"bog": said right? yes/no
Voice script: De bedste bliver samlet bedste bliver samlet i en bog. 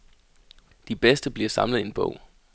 yes